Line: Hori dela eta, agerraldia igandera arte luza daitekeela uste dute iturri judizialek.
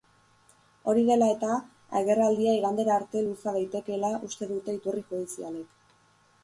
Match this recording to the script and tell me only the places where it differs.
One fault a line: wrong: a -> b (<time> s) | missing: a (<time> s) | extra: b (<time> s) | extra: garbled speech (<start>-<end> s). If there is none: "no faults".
no faults